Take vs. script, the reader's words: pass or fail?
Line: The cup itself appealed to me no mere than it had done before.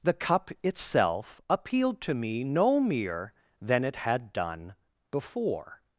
pass